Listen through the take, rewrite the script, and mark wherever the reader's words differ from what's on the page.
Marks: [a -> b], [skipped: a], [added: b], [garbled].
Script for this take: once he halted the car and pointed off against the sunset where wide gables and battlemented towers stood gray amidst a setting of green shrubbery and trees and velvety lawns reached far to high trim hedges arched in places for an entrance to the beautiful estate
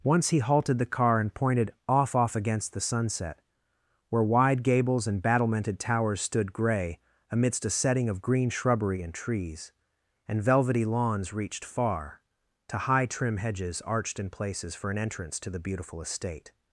once he halted the car and pointed off [added: off] against the sunset where wide gables and battlemented towers stood gray amidst a setting of green shrubbery and trees and velvety lawns reached far to high trim hedges arched in places for an entrance to the beautiful estate